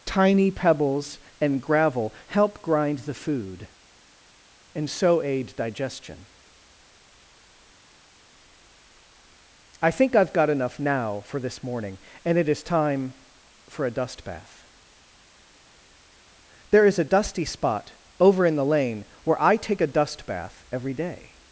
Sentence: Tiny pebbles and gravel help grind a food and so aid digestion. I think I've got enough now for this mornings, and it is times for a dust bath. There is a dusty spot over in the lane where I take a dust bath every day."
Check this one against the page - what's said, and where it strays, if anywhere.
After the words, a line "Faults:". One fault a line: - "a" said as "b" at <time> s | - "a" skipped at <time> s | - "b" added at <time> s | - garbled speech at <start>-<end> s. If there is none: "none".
Tiny pebbles and gravel help grind the food and so aid digestion. I think I've got enough now for this morning, and it is time for a dust bath. There is a dusty spot over in the lane where I take a dust bath every day."
Faults:
- "a" said as "the" at 3.0 s
- "mornings" said as "morning" at 11.6 s
- "times" said as "time" at 12.6 s